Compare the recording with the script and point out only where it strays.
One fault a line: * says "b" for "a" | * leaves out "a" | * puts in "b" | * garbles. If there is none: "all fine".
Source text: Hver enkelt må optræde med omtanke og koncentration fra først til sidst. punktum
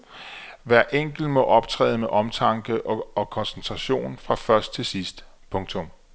all fine